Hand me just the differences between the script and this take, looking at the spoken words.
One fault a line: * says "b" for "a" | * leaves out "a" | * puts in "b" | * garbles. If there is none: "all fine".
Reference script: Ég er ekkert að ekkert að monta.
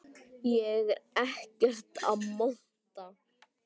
* leaves out "ekkert að"